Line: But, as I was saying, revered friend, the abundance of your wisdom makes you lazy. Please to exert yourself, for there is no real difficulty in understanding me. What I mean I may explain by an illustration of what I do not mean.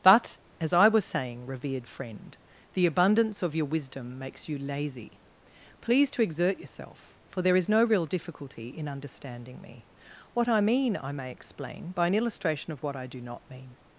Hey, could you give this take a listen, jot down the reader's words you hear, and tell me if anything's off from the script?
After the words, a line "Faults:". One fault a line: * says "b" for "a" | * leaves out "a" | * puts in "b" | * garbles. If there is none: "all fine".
But, as I was saying, revered friend, the abundance of your wisdom makes you lazy. Please to exert yourself, for there is no real difficulty in understanding me. What I mean I may explain by an illustration of what I do not mean.
Faults:
all fine